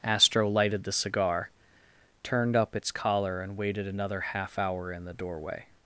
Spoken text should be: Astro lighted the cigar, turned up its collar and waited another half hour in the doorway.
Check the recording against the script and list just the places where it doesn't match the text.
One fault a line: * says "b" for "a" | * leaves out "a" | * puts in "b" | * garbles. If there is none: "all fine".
all fine